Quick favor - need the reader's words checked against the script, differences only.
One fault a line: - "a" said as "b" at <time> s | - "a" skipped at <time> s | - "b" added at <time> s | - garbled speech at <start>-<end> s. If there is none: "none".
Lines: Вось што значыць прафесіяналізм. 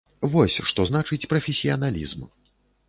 none